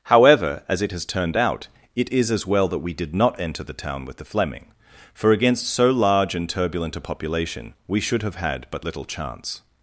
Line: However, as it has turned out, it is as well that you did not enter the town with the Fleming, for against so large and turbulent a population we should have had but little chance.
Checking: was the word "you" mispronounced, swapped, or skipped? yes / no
yes